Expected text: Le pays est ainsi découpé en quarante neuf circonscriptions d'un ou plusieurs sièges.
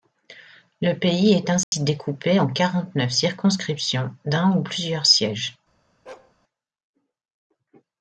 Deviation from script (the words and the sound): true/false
true